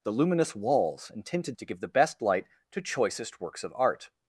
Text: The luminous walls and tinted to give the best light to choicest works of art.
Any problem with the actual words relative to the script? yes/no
no